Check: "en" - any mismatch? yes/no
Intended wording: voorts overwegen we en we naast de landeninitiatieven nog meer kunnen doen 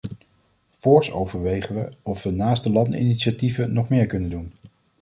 yes